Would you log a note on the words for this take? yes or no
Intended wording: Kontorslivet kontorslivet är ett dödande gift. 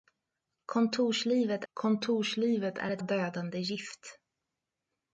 no